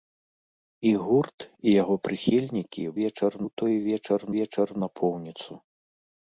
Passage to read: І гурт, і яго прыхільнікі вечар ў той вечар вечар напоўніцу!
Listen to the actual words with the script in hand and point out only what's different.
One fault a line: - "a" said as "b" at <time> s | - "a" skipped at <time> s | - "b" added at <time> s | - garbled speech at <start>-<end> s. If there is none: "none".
none